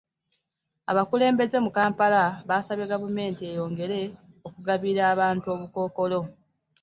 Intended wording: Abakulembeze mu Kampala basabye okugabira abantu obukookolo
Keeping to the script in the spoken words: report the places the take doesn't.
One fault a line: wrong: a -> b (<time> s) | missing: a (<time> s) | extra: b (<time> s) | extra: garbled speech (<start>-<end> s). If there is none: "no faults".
extra: gavumenti eyongere (2.9 s)